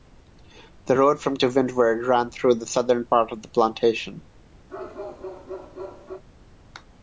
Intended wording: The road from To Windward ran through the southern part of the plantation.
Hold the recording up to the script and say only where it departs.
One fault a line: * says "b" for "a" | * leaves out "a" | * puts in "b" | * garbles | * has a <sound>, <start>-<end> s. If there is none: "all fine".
* has a bark, 4.7-6.2 s